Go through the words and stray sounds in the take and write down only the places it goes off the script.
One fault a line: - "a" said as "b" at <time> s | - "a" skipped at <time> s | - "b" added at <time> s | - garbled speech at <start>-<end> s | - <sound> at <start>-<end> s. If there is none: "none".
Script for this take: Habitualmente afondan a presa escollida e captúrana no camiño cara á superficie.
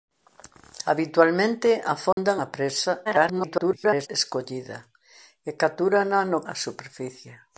- dropout at 2.1-2.2 s
- garbled speech at 3.0-4.1 s
- "camiño cara" skipped at 6.4 s